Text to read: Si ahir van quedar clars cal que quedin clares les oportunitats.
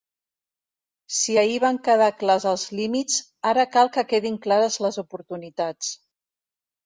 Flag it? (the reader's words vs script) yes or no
yes